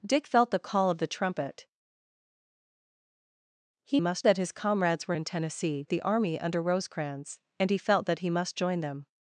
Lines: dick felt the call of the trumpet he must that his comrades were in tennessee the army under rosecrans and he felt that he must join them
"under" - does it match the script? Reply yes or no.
yes